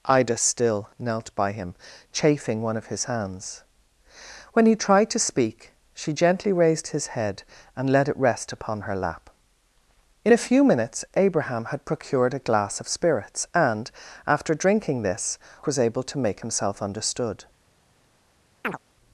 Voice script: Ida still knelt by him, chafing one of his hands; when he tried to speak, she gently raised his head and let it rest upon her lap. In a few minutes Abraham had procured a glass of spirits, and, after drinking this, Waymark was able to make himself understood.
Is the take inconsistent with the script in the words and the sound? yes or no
yes